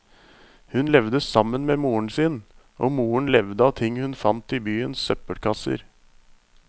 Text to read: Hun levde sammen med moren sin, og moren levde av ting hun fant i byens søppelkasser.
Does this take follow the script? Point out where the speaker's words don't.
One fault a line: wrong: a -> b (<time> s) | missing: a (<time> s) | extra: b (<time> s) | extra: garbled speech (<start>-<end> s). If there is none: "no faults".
no faults